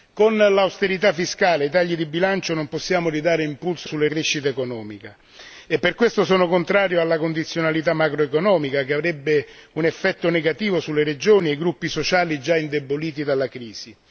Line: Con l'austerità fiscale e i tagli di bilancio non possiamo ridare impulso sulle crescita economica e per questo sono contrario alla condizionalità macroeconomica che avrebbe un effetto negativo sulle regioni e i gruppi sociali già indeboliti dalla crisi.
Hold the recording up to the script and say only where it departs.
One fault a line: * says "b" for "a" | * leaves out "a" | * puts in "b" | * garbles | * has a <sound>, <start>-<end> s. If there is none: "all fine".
all fine